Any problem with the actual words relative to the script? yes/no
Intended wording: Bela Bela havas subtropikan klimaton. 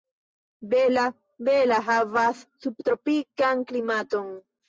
no